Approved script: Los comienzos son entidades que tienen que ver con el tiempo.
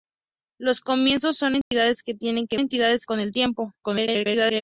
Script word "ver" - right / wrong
wrong